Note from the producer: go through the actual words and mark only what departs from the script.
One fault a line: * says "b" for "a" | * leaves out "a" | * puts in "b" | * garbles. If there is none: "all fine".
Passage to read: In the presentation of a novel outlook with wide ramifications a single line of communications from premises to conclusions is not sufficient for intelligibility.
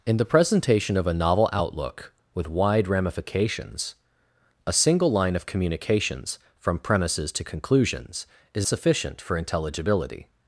* leaves out "not"